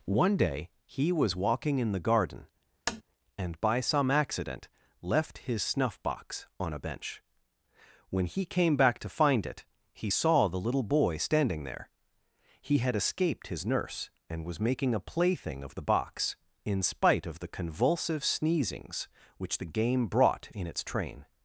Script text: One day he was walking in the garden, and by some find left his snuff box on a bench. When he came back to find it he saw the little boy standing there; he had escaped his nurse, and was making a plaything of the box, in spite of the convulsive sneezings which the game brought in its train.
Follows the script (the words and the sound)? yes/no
no